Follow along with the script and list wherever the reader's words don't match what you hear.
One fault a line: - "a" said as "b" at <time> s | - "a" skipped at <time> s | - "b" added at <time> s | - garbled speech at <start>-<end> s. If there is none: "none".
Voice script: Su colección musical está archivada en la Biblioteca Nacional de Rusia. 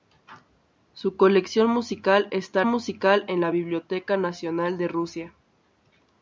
- "archivada" said as "musical" at 2.7 s